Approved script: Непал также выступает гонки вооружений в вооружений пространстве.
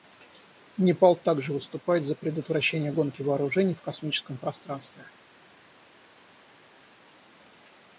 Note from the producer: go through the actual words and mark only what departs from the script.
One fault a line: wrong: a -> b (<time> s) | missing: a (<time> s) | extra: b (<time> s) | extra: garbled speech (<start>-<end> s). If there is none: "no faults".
extra: за предотвращение (2.0 s)
wrong: вооружений -> космическом (3.8 s)